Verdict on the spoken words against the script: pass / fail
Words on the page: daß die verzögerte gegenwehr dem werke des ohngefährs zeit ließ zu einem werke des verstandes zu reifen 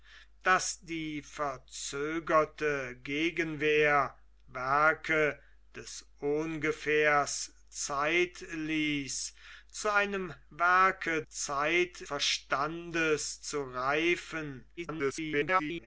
fail